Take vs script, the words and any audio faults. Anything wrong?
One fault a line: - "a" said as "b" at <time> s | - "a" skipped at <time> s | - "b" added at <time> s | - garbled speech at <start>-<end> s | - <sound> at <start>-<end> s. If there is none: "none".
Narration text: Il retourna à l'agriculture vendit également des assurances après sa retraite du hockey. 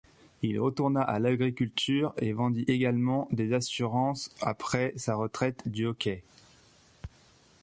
- "et" added at 2.2 s